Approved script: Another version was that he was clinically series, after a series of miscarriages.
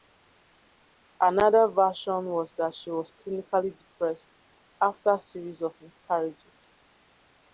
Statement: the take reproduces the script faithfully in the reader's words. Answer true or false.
false